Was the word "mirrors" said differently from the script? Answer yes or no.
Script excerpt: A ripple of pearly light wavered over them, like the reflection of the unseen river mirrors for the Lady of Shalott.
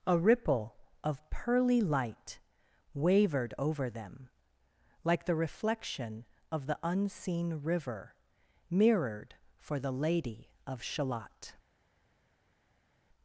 yes